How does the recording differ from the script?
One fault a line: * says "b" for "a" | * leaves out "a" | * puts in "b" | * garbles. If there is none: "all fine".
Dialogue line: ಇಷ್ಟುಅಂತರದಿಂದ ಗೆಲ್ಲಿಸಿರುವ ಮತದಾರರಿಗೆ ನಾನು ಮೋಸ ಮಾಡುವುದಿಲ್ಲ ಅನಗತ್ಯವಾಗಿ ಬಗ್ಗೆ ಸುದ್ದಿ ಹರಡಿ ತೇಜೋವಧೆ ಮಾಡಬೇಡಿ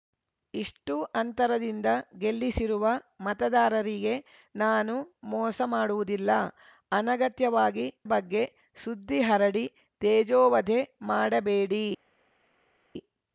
all fine